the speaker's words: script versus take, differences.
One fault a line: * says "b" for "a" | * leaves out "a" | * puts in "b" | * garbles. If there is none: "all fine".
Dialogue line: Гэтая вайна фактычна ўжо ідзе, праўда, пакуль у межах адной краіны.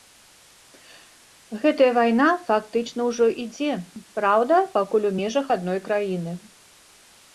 all fine